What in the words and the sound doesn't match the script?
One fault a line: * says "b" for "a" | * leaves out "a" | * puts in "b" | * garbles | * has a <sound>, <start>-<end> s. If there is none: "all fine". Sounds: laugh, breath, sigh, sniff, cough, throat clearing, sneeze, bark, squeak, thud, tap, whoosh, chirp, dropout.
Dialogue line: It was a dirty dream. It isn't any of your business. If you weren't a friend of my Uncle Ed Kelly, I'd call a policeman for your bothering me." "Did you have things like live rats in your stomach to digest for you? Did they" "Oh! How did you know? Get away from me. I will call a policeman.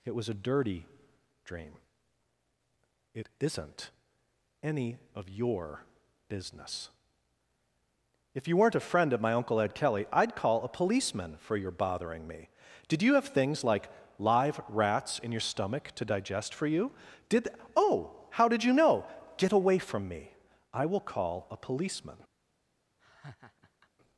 * leaves out "they"
* has a laugh, 23.0-23.9 s